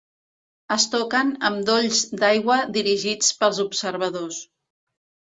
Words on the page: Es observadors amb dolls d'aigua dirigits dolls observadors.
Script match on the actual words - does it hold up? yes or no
no